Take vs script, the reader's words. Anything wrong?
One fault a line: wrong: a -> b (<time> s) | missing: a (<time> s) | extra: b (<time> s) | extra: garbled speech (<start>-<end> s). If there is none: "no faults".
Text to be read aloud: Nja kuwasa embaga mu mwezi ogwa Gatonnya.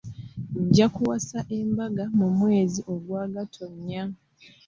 no faults